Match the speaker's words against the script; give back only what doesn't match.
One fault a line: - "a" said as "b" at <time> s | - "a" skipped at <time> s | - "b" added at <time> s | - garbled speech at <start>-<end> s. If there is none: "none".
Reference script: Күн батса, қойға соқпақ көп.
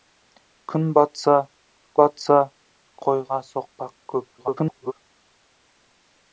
- "батса" added at 2.0 s
- garbled speech at 4.4-4.9 s